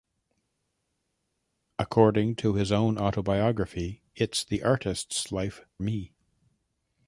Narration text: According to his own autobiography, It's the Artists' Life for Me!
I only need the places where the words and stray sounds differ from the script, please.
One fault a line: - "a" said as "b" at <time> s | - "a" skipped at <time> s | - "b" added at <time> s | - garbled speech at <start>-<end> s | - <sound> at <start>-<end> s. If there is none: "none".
- "for" skipped at 5.6 s